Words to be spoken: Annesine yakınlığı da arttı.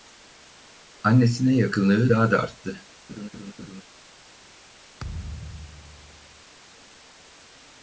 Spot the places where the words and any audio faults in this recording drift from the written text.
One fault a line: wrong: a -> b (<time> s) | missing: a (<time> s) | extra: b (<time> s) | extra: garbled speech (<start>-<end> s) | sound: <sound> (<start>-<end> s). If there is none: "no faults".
extra: daha (2.1 s)
sound: laugh (3.1-3.8 s)
sound: thud (5.0-6.4 s)